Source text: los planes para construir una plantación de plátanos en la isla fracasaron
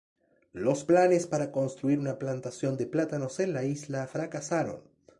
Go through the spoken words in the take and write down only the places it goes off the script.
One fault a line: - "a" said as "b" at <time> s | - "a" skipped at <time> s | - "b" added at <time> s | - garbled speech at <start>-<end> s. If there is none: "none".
none